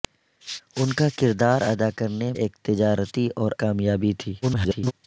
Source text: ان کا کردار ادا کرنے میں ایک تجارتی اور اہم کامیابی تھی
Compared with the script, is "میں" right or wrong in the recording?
wrong